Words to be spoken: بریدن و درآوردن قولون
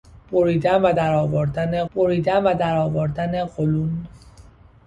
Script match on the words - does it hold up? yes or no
no